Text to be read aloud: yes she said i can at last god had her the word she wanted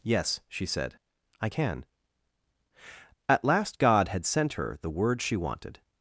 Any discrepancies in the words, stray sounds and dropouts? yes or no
yes